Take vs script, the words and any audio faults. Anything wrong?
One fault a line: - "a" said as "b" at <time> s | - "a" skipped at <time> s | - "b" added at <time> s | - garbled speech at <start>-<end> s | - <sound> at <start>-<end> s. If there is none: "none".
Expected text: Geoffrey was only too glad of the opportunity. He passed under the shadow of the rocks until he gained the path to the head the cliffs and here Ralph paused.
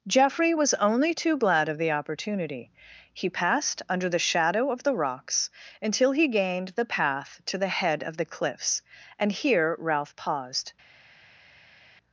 - "of" added at 8.0 s